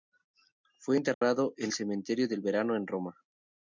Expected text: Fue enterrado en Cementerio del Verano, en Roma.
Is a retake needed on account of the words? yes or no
no